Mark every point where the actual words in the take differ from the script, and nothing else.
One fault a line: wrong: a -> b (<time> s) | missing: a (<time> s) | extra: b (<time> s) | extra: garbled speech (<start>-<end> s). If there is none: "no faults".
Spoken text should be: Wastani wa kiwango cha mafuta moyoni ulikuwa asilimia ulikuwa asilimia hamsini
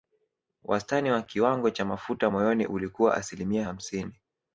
missing: ulikuwa asilimia (3.7 s)